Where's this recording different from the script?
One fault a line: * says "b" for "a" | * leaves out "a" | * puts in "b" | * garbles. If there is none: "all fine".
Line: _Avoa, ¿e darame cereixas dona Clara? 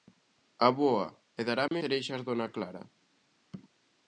all fine